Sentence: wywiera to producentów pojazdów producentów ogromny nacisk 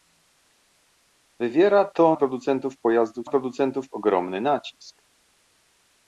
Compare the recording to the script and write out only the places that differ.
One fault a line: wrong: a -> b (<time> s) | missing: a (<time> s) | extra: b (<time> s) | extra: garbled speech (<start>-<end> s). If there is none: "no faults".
no faults